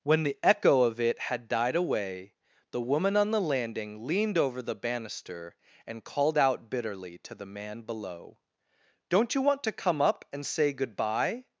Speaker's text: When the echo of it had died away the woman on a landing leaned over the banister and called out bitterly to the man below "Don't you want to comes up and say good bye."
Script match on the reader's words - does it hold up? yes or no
no